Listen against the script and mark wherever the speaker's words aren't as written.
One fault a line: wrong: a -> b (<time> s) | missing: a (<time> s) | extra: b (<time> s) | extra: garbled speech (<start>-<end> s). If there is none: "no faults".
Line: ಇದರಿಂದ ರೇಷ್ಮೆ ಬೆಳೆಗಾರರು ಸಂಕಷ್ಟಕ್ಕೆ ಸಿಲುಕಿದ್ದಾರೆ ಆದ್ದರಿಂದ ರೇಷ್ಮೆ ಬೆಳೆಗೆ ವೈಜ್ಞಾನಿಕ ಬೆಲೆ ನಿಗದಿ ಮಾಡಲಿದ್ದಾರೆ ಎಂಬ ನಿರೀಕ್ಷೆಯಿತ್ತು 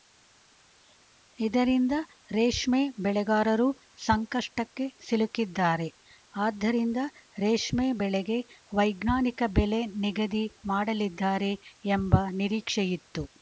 no faults